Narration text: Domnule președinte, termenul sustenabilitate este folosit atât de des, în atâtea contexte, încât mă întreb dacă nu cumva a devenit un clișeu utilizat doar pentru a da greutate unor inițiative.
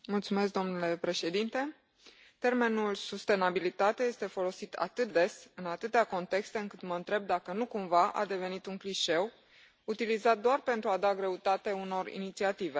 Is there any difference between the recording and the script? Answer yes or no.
yes